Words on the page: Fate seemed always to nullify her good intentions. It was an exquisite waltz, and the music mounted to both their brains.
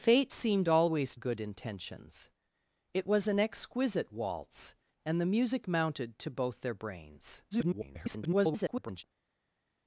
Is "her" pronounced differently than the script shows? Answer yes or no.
yes